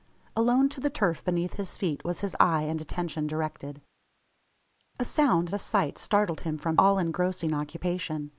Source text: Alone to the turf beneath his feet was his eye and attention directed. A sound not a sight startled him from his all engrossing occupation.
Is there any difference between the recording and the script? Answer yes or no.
yes